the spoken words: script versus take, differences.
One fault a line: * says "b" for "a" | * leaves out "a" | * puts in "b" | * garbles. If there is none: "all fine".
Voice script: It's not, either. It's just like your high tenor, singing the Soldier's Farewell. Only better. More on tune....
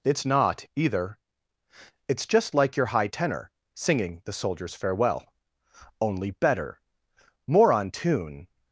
all fine